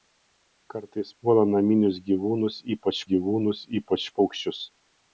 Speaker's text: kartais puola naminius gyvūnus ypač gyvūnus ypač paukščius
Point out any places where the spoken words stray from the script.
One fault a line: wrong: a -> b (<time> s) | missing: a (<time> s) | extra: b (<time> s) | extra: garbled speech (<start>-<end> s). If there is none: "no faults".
no faults